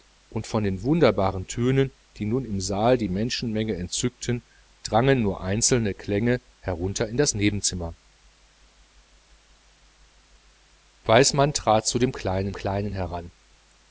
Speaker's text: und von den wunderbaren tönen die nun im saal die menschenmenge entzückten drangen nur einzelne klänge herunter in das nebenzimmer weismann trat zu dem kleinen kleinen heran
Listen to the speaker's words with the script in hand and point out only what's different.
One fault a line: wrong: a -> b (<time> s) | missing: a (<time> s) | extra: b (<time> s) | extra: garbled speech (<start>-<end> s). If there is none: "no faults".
no faults